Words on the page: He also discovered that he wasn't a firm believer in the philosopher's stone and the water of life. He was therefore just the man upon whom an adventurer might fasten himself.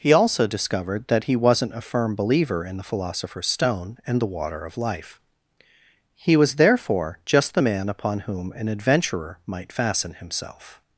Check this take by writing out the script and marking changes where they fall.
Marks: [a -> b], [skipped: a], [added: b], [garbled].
He also discovered that he wasn't a firm believer in the philosopher's stone and the water of life. He was therefore just the man upon whom an adventurer might fasten himself.